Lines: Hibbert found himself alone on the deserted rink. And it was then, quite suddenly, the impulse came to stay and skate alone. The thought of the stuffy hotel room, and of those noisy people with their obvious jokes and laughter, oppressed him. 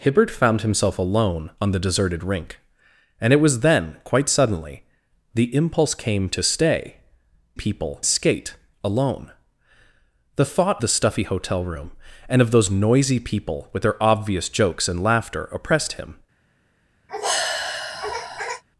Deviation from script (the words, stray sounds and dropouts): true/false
true